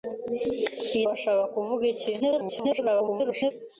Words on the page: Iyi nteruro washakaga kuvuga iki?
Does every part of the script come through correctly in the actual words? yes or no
no